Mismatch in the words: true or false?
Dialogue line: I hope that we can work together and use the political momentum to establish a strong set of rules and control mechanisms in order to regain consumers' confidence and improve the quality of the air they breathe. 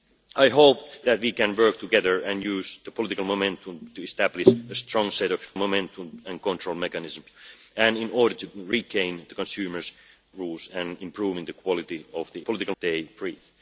true